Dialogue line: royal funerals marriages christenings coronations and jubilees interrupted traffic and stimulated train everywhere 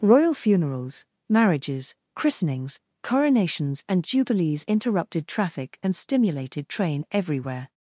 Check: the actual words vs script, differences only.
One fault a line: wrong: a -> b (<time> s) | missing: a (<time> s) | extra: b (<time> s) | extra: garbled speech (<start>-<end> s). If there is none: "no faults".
no faults